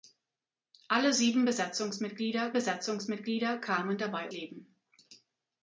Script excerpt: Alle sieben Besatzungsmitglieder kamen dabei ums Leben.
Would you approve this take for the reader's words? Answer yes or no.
no